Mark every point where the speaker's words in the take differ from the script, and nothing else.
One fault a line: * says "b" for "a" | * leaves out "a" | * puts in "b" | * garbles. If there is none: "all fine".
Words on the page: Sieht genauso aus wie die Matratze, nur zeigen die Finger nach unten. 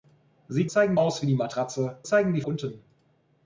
* says "zeigen" for "genauso"
* leaves out "nur"
* leaves out "Finger nach"